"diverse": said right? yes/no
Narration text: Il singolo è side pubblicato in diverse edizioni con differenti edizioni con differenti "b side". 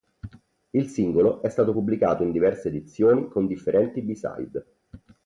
yes